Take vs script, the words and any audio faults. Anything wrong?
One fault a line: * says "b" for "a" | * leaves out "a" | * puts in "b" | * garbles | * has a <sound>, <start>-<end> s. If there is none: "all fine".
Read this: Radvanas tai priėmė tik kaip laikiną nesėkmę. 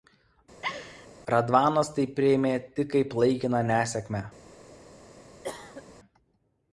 * has a laugh, 0.6-1.1 s
* has a cough, 5.4-5.8 s